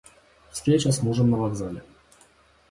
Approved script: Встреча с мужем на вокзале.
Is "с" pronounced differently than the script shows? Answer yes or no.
no